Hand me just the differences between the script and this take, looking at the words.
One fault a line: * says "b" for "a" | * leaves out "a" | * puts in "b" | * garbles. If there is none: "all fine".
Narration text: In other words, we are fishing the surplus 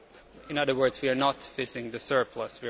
* puts in "not"